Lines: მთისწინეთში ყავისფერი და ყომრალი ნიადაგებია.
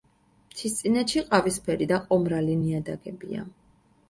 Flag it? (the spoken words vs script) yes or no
no